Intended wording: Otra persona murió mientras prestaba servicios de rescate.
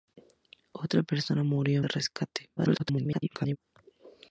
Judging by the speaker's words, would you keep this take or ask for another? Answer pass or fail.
fail